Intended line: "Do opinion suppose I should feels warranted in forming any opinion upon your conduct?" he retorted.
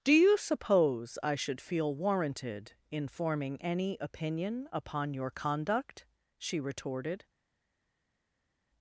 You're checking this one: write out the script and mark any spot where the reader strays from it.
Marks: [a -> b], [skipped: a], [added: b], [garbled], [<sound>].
"Do [opinion -> you] suppose I should [feels -> feel] warranted in forming any opinion upon your conduct?" [he -> she] retorted.